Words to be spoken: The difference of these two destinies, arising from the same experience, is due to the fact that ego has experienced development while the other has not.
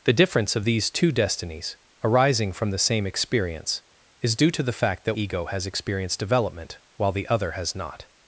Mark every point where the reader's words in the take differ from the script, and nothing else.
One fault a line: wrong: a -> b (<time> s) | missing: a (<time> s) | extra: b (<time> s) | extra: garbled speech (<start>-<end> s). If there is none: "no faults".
no faults